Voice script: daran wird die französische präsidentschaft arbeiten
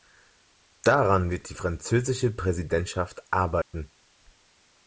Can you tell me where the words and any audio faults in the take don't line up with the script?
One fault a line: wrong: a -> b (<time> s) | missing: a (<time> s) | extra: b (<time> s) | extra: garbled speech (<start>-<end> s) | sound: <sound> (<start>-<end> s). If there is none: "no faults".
sound: dropout (3.6-3.7 s)